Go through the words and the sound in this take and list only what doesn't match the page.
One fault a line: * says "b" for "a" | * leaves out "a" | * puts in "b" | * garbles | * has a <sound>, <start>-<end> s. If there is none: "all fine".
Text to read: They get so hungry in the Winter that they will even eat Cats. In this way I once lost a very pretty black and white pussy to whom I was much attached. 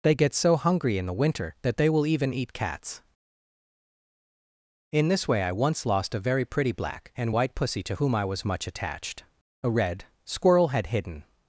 * puts in "A red Squirrel had hidden"